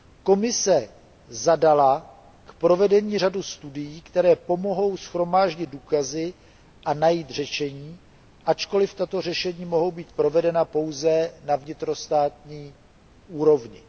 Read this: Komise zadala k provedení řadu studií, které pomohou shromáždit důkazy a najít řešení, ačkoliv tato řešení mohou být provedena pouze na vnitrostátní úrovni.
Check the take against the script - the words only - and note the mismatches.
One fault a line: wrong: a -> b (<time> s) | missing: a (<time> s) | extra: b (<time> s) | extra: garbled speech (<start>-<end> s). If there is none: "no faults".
no faults